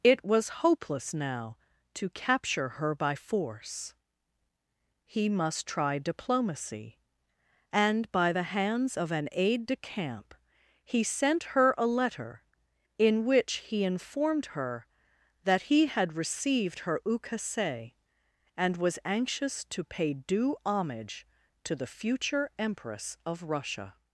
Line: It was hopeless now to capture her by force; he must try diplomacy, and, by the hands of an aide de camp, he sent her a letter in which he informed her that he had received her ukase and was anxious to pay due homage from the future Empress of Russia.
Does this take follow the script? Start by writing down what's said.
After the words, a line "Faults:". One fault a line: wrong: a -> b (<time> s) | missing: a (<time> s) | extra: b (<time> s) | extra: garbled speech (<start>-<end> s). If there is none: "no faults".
It was hopeless now to capture her by force; he must try diplomacy, and, by the hands of an aide de camp, he sent her a letter in which he informed her that he had received her ukase and was anxious to pay due homage to the future Empress of Russia.
Faults:
wrong: from -> to (21.6 s)